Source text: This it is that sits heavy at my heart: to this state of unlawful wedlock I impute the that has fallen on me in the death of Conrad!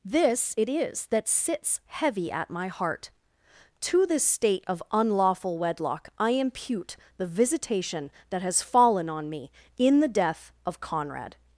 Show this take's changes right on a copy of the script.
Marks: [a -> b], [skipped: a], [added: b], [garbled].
This it is that sits heavy at my heart: to this state of unlawful wedlock I impute the [added: visitation] that has fallen on me in the death of Conrad!